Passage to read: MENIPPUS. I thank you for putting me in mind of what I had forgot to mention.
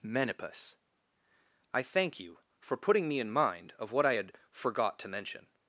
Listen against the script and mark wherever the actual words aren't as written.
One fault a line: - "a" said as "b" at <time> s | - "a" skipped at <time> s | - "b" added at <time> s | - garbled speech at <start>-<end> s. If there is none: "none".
none